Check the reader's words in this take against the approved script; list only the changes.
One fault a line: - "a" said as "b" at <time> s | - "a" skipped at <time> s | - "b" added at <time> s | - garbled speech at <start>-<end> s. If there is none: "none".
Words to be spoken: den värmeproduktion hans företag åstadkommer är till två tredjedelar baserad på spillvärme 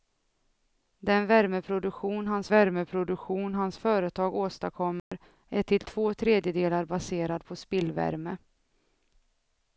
- "värmeproduktion hans" added at 2.5 s